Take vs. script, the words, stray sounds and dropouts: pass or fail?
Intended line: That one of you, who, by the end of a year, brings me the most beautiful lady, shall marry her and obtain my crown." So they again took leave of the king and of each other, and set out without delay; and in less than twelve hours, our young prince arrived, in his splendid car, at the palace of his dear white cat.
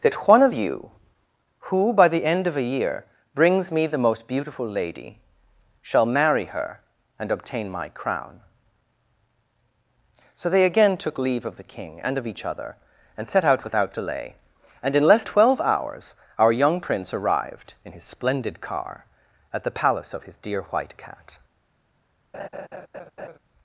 fail